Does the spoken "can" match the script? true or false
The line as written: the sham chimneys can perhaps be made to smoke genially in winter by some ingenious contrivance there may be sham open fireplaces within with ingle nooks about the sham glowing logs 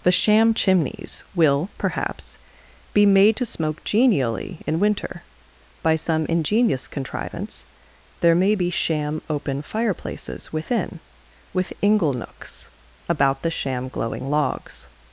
false